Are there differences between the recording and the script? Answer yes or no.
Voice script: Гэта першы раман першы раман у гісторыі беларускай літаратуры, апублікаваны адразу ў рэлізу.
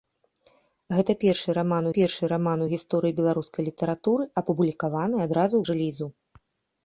no